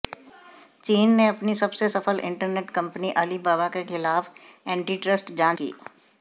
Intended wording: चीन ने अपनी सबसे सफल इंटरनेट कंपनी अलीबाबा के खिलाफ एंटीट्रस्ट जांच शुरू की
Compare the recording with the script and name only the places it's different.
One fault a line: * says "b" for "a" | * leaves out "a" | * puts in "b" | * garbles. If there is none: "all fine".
* leaves out "शुरू"